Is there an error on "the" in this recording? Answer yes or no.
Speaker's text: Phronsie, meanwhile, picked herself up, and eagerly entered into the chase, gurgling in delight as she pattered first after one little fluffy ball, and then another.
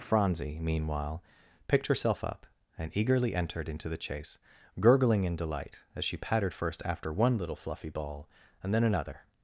no